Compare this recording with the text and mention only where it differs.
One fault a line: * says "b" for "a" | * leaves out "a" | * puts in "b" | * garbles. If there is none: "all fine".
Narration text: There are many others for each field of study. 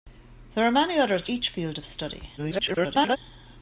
* leaves out "for"
* garbles